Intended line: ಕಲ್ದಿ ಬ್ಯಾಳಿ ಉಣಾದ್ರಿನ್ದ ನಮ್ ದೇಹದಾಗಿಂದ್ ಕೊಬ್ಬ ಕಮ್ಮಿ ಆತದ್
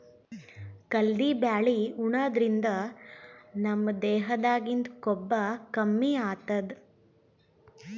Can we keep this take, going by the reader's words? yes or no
yes